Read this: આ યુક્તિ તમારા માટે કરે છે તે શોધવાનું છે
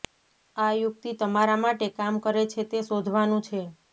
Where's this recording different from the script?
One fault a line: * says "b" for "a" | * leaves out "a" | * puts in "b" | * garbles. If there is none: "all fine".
* puts in "કામ"